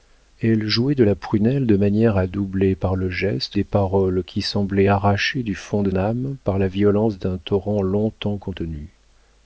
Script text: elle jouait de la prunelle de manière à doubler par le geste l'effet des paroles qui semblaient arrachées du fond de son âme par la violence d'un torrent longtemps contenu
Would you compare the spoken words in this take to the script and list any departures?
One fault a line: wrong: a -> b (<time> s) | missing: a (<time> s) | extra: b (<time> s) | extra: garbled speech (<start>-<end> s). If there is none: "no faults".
missing: l'effet (3.6 s)
missing: son (5.9 s)